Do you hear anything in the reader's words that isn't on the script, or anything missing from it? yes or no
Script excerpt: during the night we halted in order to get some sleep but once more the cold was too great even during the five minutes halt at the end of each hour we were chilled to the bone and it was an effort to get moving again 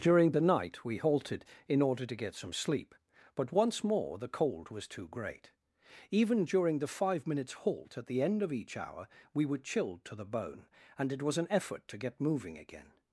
no